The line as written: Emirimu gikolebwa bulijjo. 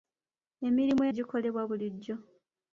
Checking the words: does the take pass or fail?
pass